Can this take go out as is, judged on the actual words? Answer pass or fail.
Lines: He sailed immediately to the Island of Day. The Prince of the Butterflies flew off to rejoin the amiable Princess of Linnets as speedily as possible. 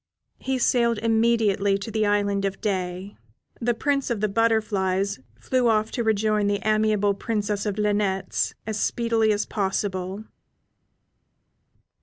pass